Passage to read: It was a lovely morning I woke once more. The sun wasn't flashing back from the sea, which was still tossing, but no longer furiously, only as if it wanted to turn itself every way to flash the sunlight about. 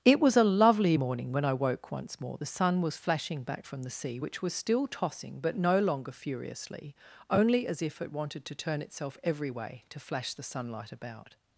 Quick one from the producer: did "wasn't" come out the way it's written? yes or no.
no